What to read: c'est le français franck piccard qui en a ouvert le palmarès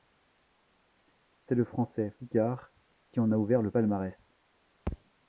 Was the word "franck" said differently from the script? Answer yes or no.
yes